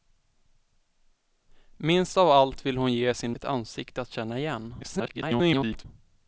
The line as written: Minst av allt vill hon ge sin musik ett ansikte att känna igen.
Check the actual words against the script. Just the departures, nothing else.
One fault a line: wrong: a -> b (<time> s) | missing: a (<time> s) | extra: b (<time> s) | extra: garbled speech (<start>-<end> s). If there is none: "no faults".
missing: musik (3.4 s)
extra: garbled speech (4.8-5.9 s)